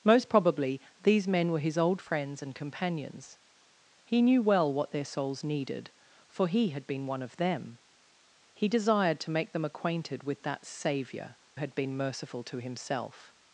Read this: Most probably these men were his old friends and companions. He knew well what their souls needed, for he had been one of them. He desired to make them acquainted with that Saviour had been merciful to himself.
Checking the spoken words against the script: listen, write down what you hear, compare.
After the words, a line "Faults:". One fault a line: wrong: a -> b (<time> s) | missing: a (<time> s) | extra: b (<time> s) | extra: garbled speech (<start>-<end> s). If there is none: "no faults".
Most probably these men were his old friends and companions. He knew well what their souls needed, for he had been one of them. He desired to make them acquainted with that Saviour had been merciful to himself.
Faults:
no faults